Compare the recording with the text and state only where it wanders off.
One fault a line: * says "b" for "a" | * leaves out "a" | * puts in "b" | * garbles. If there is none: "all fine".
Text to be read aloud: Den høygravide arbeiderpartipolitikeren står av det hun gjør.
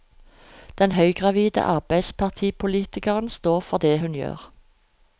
* says "for" for "av"